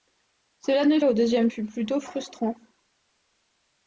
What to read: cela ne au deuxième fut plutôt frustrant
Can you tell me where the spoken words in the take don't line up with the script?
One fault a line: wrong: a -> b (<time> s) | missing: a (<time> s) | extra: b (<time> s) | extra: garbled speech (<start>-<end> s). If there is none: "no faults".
no faults